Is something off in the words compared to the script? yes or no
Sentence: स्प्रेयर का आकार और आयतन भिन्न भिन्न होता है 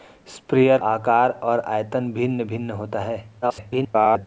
yes